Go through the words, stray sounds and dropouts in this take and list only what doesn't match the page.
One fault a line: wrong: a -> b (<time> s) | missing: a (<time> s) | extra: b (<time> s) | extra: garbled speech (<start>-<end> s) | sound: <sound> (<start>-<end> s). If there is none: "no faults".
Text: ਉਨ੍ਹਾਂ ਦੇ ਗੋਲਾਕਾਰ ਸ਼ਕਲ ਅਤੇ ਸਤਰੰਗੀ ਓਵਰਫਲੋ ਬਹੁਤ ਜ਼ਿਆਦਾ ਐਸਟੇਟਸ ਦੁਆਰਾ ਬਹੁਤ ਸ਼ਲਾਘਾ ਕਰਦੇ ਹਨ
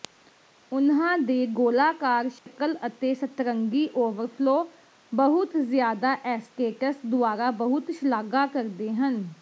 sound: dropout (2.4-2.5 s)